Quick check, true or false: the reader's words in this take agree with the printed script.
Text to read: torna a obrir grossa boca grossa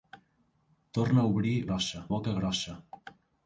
true